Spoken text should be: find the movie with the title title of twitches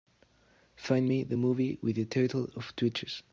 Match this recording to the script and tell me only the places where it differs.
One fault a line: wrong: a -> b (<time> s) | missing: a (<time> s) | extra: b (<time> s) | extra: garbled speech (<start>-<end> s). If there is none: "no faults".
extra: me (1.1 s)
missing: title (2.5 s)